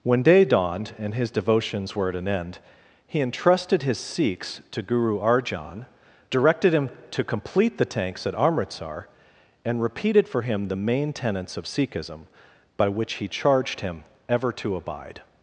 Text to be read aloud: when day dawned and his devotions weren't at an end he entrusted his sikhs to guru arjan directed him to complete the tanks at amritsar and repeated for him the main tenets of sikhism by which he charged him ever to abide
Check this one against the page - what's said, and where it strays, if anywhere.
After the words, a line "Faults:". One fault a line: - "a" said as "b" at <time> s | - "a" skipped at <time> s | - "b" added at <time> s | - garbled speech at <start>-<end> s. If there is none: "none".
when day dawned and his devotions were at an end he entrusted his sikhs to guru arjan directed him to complete the tanks at amritsar and repeated for him the main tenets of sikhism by which he charged him ever to abide
Faults:
- "weren't" said as "were" at 1.9 s